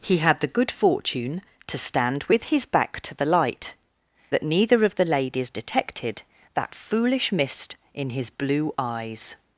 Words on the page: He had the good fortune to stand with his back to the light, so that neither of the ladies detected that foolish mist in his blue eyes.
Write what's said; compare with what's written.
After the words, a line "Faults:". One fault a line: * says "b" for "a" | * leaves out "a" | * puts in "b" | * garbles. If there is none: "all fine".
He had the good fortune to stand with his back to the light, that neither of the ladies detected that foolish mist in his blue eyes.
Faults:
* leaves out "so"